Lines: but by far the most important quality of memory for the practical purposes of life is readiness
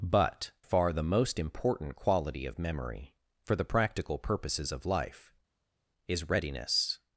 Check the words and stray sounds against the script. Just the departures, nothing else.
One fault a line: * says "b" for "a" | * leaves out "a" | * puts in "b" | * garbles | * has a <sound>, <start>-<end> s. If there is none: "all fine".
* leaves out "by"